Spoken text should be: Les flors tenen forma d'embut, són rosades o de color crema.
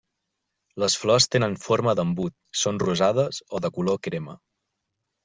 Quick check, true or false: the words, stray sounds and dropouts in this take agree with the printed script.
true